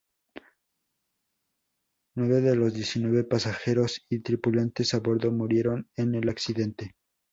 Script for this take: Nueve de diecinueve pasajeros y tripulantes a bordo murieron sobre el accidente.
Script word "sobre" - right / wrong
wrong